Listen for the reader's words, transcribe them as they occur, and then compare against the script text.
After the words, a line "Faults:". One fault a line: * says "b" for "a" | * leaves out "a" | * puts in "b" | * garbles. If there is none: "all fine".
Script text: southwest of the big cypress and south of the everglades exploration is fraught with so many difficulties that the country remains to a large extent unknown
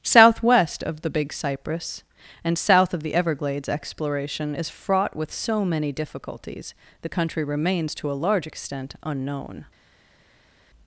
southwest of the big cypress and south of the everglades exploration is fraught with so many difficulties the country remains to a large extent unknown
Faults:
* leaves out "that"